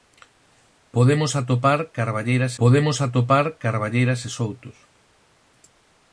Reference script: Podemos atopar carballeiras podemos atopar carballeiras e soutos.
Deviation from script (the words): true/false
false